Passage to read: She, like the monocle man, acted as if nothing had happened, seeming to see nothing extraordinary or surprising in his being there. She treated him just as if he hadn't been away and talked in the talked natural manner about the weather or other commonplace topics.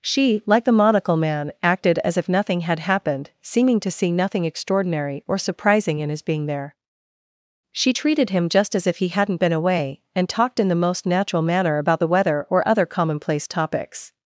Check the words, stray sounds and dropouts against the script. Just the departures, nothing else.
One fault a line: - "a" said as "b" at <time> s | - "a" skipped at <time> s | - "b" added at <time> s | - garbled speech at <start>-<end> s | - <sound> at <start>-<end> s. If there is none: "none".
- "talked" said as "most" at 10.8 s